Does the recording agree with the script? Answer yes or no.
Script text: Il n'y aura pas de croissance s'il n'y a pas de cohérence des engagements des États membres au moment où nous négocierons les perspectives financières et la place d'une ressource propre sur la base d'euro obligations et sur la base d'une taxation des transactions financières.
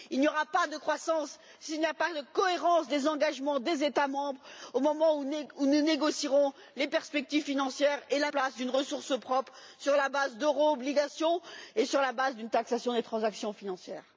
yes